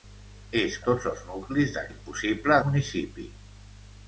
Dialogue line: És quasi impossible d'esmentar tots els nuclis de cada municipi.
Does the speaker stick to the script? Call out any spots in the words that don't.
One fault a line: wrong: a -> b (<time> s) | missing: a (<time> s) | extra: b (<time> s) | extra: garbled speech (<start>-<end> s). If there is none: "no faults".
missing: quasi impossible d'esmentar (0.8 s)
wrong: cada -> impossible (1.9 s)